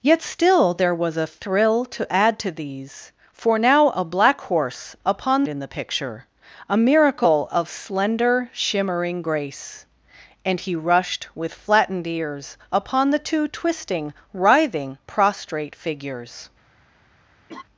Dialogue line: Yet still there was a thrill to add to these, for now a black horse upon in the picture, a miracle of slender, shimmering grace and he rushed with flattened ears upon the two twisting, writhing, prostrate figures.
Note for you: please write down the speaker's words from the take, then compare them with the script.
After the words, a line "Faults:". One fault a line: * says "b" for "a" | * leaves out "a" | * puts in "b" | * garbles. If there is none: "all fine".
Yet still there was a thrill to add to these, for now a black horse upon in the picture, a miracle of slender, shimmering grace and he rushed with flattened ears upon the two twisting, writhing, prostrate figures.
Faults:
all fine